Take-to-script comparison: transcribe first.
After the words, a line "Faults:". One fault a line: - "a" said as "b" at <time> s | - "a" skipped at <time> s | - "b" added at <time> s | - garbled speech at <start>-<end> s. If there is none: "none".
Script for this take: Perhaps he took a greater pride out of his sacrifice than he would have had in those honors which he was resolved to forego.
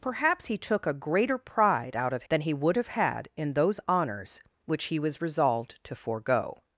Perhaps he took a greater pride out of than he would have had in those honors which he was resolved to forego.
Faults:
- "his sacrifice" skipped at 2.2 s